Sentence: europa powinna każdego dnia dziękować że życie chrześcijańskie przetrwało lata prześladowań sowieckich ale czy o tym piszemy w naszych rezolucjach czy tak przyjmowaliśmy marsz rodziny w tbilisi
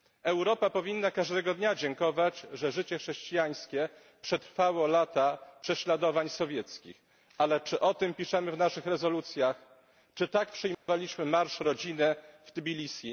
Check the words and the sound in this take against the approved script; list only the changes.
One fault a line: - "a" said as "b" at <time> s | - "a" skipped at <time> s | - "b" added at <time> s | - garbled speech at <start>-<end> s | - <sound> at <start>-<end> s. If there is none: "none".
- dropout at 10.7-10.9 s